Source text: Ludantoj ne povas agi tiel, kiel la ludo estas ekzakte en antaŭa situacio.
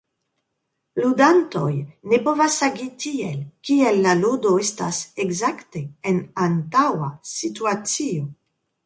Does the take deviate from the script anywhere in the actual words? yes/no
no